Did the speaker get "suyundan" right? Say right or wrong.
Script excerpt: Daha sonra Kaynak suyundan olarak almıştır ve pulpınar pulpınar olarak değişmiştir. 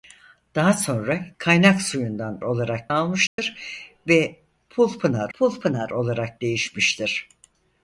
right